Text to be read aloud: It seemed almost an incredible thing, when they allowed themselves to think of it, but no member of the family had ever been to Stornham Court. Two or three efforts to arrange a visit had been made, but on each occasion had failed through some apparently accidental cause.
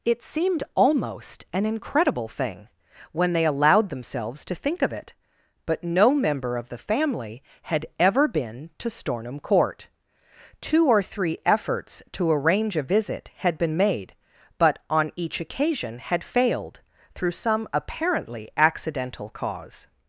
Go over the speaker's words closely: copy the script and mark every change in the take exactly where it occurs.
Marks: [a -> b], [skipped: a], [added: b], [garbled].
It seemed almost an incredible thing, when they allowed themselves to think of it, but no member of the family had ever been to Stornham Court. Two or three efforts to arrange a visit had been made, but on each occasion had failed through some apparently accidental cause.